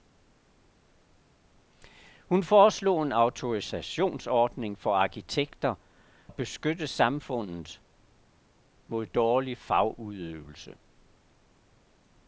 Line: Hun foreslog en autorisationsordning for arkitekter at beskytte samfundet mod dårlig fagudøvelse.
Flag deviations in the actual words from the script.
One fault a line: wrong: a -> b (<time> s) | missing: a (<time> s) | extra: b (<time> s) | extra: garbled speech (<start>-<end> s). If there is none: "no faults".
no faults